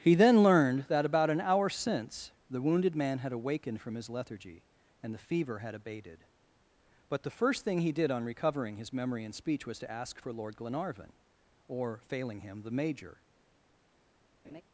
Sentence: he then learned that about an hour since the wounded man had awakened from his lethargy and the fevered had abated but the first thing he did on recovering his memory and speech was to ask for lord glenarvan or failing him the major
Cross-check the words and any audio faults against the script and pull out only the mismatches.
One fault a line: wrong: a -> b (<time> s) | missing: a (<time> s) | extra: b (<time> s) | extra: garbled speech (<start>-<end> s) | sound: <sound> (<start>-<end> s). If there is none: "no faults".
wrong: fevered -> fever (5.2 s)
sound: laugh (14.4-14.6 s)